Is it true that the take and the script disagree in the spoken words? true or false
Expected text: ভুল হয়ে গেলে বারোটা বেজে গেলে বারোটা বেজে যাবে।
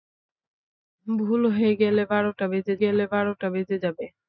false